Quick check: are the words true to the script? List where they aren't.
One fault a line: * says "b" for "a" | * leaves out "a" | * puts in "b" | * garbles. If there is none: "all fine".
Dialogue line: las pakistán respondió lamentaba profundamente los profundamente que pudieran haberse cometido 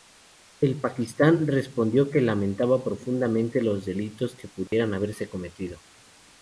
* says "el" for "las"
* puts in "que"
* says "delitos" for "profundamente"